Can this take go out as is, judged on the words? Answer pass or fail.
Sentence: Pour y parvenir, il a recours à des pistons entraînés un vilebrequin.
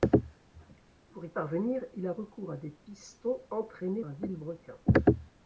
pass